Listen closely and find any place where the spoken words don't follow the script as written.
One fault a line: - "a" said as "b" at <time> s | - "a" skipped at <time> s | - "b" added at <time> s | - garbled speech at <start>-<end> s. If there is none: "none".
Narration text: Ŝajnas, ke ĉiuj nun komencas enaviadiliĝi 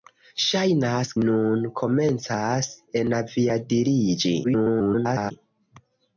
- "ke ĉiuj" skipped at 1.1 s
- garbled speech at 4.4-5.3 s